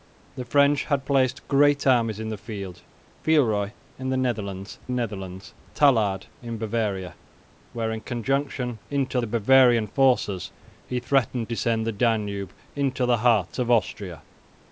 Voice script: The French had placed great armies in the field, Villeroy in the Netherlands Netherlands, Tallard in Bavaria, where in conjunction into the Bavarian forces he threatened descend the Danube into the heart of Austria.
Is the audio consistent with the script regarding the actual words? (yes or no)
yes